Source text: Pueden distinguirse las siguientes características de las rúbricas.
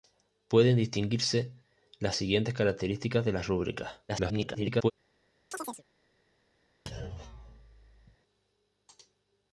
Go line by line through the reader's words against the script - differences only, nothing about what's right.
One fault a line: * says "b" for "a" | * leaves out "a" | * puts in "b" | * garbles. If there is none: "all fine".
* garbles